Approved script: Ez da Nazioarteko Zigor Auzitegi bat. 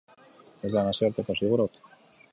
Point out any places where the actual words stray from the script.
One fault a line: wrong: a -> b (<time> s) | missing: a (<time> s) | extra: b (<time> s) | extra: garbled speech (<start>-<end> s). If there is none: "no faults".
missing: Auzitegi (1.6 s)